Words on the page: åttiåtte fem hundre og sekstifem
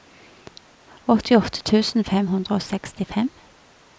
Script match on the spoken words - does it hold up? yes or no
no